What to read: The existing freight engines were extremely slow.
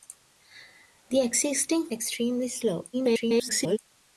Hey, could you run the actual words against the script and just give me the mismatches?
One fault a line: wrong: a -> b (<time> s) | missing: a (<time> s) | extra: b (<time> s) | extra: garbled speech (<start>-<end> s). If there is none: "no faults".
missing: freight engines were (1.9 s)
extra: garbled speech (2.9-3.8 s)